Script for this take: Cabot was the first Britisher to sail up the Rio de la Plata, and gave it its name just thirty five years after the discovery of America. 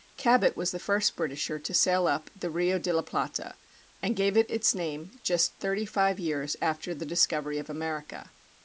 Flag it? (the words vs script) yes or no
no